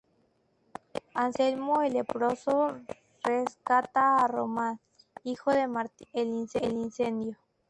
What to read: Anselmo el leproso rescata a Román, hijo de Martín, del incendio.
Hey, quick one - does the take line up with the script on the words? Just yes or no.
yes